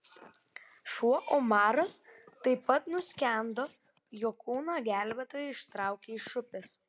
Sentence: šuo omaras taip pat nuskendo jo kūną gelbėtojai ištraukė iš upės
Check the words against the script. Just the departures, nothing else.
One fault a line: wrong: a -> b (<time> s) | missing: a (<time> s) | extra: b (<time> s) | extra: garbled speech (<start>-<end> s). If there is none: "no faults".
no faults